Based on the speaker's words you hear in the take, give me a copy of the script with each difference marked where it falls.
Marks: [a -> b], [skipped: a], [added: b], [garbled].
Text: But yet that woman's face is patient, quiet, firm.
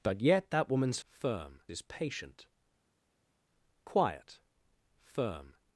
But yet that woman's [face -> firm] is patient, quiet, firm.